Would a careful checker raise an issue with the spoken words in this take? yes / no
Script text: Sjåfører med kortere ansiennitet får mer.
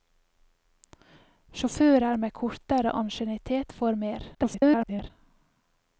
yes